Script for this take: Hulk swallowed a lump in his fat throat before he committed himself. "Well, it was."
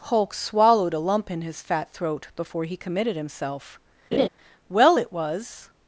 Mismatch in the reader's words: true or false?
false